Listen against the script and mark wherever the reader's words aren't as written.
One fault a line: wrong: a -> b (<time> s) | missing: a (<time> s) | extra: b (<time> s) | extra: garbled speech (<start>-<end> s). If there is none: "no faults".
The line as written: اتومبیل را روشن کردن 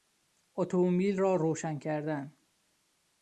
no faults